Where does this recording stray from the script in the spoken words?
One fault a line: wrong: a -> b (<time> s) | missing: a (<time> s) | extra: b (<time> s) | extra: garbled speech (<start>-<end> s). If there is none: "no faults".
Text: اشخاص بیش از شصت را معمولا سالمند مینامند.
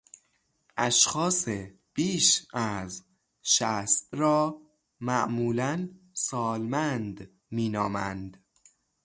no faults